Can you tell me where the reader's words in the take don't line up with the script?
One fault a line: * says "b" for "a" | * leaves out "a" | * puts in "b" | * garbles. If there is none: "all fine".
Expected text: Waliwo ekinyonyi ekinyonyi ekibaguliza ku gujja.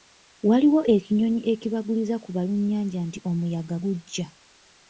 * leaves out "ekinyonyi"
* puts in "balunnyanja nti omuyaga"